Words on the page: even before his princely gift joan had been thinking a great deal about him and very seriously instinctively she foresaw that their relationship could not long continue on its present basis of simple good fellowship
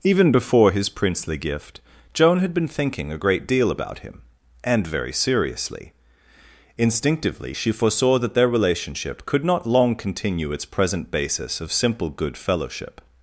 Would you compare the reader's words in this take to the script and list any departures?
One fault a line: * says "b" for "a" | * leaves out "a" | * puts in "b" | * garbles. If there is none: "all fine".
* leaves out "on"